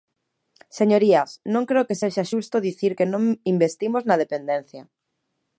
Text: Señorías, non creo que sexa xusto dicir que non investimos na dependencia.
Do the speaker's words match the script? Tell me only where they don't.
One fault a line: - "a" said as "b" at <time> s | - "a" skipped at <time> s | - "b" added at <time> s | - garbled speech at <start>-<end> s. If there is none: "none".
none